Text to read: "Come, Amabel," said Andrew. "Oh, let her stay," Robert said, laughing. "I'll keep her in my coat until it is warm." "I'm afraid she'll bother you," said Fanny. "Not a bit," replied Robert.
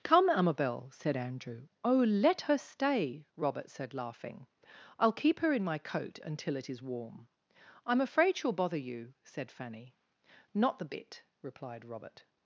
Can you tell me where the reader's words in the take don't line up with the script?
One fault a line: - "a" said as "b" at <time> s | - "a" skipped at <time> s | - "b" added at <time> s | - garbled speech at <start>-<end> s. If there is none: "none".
- "a" said as "the" at 10.8 s